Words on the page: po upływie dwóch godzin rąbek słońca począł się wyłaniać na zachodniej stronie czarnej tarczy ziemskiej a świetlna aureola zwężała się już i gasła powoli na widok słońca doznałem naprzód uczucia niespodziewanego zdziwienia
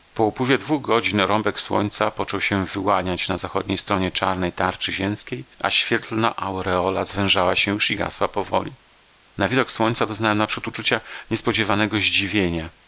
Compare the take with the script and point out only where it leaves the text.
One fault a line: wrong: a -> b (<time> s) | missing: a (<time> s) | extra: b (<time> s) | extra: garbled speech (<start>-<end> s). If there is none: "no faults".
no faults